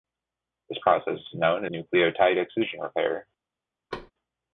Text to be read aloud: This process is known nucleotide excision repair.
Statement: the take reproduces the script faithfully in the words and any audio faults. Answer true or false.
false